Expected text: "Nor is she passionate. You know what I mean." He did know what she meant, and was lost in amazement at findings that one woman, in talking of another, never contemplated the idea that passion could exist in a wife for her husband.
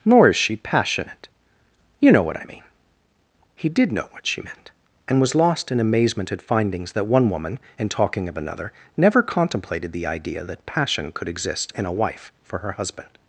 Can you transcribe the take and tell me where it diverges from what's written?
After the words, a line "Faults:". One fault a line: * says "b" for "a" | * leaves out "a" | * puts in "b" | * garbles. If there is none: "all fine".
"Nor is she passionate. You know what I mean." He did know what she meant, and was lost in amazement at findings that one woman, in talking of another, never contemplated the idea that passion could exist in a wife for her husband.
Faults:
all fine